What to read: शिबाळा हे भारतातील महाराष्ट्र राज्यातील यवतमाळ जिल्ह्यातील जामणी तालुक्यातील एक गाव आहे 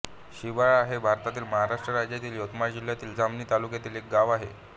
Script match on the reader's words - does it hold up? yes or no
yes